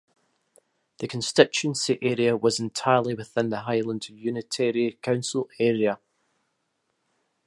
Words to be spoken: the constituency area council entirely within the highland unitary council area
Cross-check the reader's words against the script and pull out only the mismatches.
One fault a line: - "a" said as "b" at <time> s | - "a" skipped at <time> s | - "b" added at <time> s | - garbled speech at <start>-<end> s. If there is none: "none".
- "council" said as "was" at 2.4 s